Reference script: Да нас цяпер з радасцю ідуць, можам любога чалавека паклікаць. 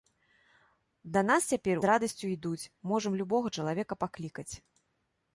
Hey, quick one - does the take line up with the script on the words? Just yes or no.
yes